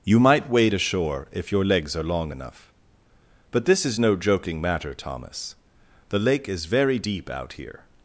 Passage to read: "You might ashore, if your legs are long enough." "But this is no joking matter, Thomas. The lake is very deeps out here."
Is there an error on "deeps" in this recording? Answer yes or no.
yes